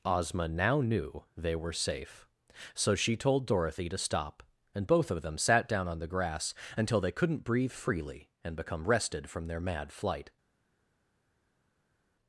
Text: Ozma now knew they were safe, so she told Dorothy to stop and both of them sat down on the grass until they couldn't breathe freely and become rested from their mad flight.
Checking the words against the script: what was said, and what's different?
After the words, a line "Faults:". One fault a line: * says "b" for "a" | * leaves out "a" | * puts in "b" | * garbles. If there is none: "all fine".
Ozma now knew they were safe, so she told Dorothy to stop and both of them sat down on the grass until they couldn't breathe freely and become rested from their mad flight.
Faults:
all fine